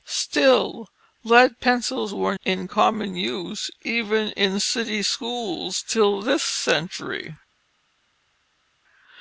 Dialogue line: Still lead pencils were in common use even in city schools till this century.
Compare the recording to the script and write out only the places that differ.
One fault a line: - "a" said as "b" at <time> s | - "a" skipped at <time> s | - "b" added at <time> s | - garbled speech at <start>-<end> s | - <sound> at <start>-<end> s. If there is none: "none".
none